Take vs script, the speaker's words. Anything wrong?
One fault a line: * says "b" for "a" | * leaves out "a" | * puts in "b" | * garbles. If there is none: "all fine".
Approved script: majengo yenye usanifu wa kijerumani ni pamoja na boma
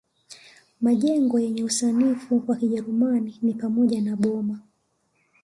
all fine